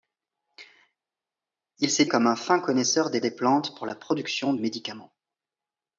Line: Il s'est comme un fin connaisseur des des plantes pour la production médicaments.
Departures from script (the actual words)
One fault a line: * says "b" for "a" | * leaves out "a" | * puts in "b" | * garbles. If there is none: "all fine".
all fine